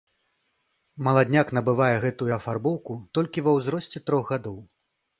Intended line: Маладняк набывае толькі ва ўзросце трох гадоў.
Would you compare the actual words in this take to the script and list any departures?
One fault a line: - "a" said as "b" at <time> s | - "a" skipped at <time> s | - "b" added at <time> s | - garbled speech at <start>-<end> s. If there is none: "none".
- "гэтую афарбоўку" added at 2.0 s